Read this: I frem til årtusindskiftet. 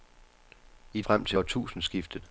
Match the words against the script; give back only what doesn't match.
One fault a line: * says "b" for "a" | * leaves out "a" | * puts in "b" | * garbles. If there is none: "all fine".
all fine